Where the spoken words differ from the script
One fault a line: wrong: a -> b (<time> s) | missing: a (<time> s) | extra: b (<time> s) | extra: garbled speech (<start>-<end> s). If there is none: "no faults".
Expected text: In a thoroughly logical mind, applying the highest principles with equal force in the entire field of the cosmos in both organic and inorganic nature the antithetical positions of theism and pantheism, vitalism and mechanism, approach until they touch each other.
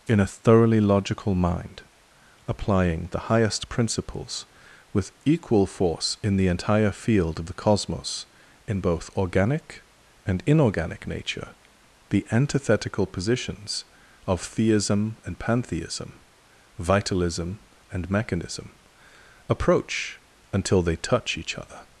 no faults